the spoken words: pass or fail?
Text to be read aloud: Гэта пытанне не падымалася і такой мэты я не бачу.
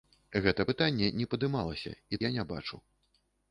fail